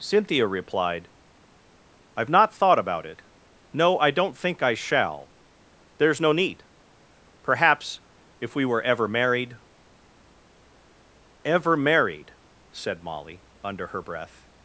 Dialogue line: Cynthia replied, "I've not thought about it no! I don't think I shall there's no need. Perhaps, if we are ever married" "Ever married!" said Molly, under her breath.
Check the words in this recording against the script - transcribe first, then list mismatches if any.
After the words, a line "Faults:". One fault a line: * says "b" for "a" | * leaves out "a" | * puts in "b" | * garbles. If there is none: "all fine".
Cynthia replied, "I've not thought about it no! I don't think I shall there's no need. Perhaps, if we were ever married" "Ever married!" said Molly, under her breath.
Faults:
* says "were" for "are"